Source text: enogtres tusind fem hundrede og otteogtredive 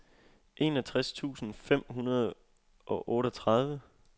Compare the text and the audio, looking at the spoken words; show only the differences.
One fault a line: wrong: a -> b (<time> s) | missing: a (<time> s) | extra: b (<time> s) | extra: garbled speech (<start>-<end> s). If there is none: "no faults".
no faults